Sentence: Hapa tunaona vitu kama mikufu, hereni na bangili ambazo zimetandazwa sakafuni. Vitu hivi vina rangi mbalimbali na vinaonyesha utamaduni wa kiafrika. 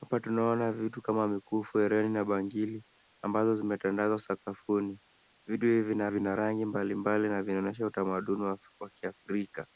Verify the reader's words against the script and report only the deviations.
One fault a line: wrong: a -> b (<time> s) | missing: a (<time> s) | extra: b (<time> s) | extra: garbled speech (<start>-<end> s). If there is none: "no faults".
extra: vina (6.1 s)